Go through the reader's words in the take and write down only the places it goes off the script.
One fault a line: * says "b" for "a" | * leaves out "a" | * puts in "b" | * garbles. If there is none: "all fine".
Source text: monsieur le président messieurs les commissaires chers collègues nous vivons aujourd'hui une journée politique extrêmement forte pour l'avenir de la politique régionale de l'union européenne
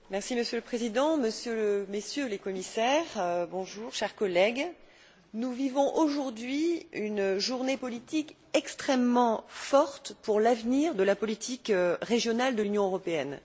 all fine